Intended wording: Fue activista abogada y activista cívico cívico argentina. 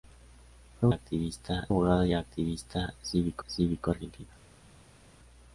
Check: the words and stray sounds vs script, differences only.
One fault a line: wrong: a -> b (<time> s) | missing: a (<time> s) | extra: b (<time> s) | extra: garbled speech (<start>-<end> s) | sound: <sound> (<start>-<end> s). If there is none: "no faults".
no faults